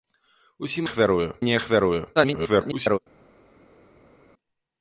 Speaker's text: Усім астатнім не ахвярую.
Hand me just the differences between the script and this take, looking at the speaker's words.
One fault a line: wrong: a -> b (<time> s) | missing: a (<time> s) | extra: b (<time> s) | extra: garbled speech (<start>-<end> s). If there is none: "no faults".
wrong: астатнім -> ахвярую (0.8 s)
extra: garbled speech (2.2-3.0 s)